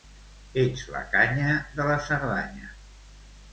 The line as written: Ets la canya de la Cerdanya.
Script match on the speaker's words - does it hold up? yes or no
yes